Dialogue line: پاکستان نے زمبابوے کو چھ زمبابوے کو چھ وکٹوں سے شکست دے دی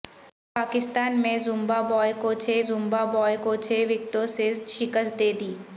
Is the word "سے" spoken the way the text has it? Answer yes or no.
yes